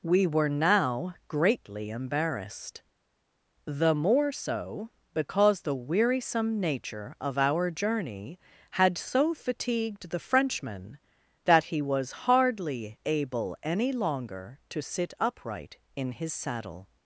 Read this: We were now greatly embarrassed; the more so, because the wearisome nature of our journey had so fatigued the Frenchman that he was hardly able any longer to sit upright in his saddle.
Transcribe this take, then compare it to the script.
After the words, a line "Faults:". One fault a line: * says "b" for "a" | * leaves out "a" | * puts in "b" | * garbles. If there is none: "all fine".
We were now greatly embarrassed; the more so, because the wearisome nature of our journey had so fatigued the Frenchman that he was hardly able any longer to sit upright in his saddle.
Faults:
all fine